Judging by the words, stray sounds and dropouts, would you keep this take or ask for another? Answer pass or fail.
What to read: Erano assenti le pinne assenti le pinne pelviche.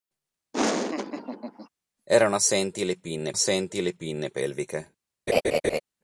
fail